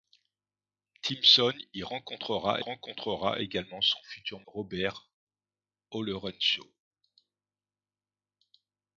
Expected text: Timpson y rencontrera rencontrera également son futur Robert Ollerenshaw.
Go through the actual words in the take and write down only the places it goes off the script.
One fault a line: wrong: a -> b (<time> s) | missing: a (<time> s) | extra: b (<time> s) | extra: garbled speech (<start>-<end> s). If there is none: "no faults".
no faults